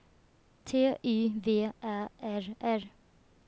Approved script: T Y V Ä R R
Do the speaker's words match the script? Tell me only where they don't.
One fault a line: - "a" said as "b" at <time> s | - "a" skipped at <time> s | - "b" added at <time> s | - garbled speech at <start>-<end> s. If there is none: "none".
none